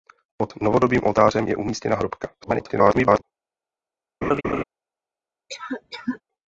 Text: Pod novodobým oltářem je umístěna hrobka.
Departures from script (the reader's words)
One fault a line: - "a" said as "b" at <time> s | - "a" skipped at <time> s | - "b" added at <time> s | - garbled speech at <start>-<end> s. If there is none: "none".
- garbled speech at 2.4-3.2 s